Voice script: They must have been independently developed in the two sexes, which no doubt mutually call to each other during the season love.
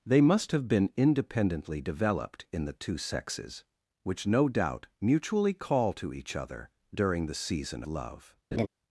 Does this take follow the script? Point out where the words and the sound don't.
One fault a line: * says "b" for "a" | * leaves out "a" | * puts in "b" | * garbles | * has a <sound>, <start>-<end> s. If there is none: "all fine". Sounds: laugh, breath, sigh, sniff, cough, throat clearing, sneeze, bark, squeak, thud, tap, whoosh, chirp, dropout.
* has a laugh, 8.5-8.7 s